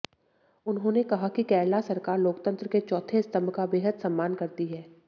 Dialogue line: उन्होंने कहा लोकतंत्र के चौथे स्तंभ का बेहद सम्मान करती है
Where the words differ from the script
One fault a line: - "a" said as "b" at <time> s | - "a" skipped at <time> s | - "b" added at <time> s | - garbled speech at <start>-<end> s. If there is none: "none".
- "कि केरला सरकार" added at 1.3 s